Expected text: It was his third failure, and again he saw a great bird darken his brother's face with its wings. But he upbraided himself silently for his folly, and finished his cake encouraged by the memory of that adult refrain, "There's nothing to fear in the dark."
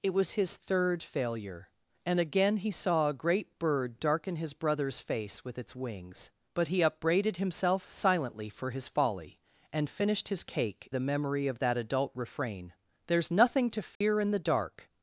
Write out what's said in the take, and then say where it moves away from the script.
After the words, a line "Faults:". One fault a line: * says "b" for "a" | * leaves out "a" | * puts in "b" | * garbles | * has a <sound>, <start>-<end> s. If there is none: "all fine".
It was his third failure, and again he saw a great bird darken his brother's face with its wings. But he upbraided himself silently for his folly, and finished his cake the memory of that adult refrain, "There's nothing to fear in the dark."
Faults:
* leaves out "encouraged by"
* has a dropout, 13.9-14.0 s